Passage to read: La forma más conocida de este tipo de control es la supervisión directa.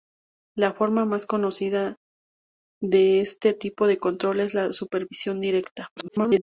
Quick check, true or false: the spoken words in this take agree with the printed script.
false